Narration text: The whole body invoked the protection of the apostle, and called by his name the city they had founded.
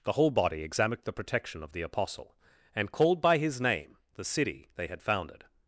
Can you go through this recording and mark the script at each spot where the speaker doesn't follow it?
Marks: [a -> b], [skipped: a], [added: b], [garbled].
The whole body [invoked -> examined] the protection of the apostle, and called by his name the city they had founded.